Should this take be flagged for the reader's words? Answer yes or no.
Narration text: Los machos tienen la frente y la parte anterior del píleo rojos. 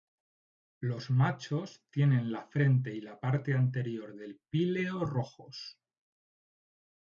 no